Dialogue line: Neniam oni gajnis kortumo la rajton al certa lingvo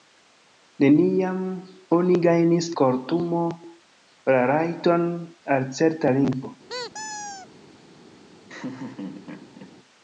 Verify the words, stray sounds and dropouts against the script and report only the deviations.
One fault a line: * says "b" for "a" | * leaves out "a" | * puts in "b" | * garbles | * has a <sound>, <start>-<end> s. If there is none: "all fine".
* has a squeak, 6.7-7.5 s
* has a laugh, 8.5-9.8 s